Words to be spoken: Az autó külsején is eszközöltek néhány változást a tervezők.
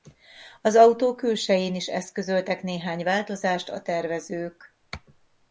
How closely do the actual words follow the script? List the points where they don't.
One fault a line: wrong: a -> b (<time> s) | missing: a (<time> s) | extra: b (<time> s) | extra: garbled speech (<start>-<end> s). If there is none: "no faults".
no faults